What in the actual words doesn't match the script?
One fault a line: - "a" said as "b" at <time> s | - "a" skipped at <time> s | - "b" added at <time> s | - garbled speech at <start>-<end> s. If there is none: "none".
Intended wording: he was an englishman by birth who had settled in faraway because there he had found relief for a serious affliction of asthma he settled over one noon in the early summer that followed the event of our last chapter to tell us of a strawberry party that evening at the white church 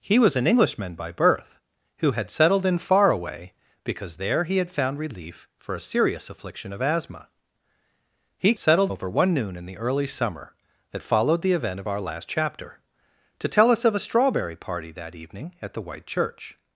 none